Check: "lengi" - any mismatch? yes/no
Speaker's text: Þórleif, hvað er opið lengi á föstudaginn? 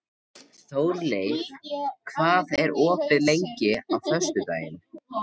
no